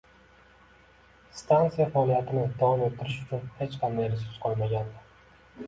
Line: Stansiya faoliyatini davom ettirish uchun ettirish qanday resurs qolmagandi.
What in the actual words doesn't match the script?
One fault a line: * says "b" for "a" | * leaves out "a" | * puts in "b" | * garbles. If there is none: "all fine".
* says "hech" for "ettirish"